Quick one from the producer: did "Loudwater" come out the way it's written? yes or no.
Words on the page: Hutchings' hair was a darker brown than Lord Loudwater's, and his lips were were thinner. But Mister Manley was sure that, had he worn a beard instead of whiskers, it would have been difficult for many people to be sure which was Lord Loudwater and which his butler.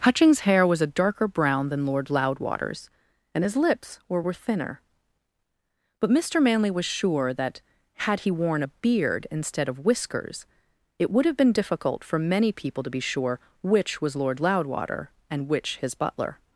yes